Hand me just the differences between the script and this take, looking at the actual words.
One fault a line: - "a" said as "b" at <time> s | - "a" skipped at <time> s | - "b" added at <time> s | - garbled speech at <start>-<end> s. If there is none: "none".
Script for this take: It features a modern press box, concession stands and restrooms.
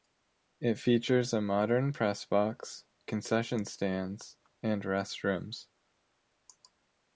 none